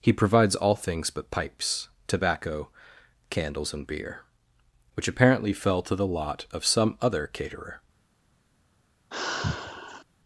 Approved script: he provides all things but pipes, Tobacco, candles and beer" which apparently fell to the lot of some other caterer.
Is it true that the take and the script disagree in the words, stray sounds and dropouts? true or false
true